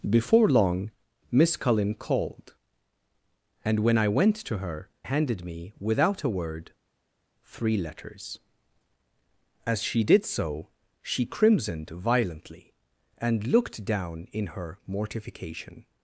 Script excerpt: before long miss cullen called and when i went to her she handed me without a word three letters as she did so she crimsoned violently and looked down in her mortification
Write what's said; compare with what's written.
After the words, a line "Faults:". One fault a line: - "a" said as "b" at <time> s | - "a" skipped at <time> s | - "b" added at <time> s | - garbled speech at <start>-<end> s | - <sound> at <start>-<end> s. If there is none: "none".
before long miss cullen called and when i went to her handed me without a word three letters as she did so she crimsoned violently and looked down in her mortification
Faults:
- "she" skipped at 4.9 s